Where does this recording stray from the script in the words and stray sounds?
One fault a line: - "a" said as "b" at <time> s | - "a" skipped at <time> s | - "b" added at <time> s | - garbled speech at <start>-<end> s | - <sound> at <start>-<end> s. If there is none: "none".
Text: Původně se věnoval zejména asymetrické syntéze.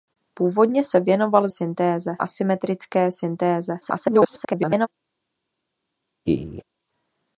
- "zejména" said as "syntéze" at 1.5 s
- garbled speech at 3.8-4.9 s
- laugh at 6.3-6.6 s